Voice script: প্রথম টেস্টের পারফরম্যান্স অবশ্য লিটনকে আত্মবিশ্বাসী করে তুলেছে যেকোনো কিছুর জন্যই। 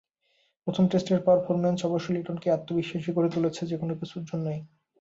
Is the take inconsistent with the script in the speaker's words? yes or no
no